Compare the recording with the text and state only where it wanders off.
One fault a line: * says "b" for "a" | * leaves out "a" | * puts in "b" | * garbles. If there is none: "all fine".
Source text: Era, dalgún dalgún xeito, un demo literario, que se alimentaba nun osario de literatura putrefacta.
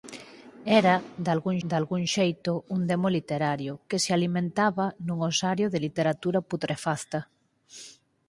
all fine